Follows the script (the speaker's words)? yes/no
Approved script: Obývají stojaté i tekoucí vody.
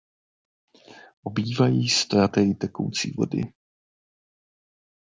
yes